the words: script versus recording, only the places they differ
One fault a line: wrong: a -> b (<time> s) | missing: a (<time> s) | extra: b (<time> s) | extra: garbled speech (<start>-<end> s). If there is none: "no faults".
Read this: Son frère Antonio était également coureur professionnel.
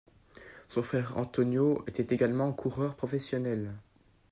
no faults